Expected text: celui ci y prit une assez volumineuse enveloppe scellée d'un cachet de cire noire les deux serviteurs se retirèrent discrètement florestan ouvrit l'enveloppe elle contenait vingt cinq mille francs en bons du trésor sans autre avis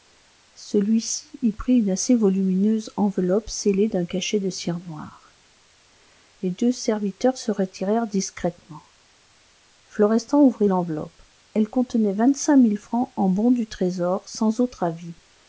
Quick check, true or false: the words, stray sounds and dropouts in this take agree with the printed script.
true